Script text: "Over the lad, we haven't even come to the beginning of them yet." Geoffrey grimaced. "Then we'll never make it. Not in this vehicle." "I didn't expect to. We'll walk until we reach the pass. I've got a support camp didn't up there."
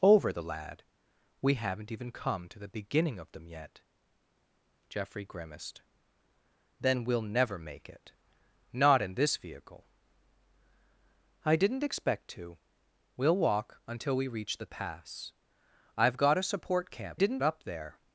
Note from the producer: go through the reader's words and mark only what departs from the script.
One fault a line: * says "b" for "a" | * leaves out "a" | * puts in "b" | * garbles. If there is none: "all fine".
all fine